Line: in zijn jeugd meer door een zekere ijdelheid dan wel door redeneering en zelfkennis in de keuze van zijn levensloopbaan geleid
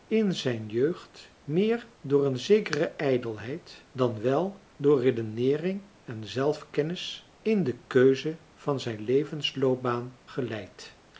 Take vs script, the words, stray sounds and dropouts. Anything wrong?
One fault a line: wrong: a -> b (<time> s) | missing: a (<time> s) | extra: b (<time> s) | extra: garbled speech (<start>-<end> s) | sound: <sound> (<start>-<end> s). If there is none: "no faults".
no faults